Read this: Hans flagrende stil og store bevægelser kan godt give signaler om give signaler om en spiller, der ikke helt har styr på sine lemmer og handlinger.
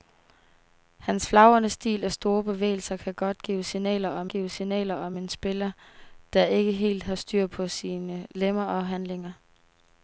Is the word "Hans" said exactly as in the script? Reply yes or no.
yes